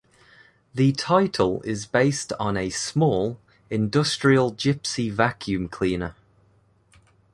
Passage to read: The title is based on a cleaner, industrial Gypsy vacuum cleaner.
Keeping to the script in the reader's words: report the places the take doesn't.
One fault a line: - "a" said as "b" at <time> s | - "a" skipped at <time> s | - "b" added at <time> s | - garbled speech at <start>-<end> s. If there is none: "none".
- "cleaner" said as "small" at 2.7 s